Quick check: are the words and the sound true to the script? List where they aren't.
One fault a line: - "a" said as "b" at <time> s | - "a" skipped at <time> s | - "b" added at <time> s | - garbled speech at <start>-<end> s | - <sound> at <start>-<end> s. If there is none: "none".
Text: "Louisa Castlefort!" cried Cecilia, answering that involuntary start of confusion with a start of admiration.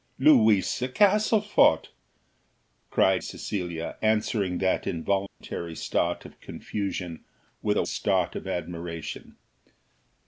- dropout at 5.3-5.4 s